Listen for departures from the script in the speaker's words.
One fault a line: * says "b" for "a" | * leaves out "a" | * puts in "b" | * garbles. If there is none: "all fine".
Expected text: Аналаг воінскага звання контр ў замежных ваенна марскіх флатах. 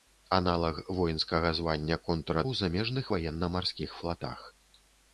all fine